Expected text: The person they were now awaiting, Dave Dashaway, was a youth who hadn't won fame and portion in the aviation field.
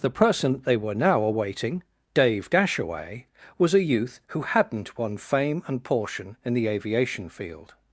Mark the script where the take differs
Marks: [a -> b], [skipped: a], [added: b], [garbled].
The person they were now awaiting, Dave Dashaway, was a youth who hadn't won fame and portion in the aviation field.